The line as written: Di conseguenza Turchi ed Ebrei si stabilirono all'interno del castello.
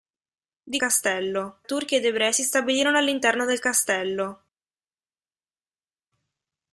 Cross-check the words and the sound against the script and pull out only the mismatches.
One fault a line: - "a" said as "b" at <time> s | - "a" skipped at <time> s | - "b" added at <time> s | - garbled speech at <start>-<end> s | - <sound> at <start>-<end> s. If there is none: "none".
- "conseguenza" said as "castello" at 0.8 s